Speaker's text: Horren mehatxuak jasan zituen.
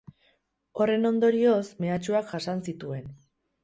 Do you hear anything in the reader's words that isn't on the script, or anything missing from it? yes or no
yes